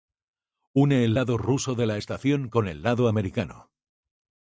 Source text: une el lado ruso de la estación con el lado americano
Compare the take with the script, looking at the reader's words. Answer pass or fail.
pass